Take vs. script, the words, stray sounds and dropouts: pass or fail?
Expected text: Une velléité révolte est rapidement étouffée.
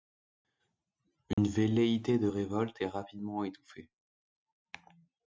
fail